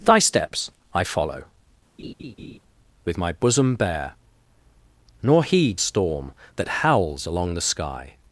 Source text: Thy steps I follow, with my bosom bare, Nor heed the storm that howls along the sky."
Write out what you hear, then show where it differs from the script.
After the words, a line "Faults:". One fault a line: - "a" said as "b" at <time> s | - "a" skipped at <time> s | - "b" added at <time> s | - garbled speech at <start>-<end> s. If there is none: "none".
Thy steps I follow, with my bosom bare, Nor heed storm that howls along the sky."
Faults:
- "the" skipped at 5.8 s